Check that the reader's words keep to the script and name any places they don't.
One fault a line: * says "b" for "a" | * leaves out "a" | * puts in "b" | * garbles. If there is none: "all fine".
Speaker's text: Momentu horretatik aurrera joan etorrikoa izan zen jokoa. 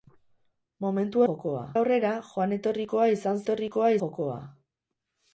* says "jokoa" for "horretatik"
* says "etorrikoa" for "zen"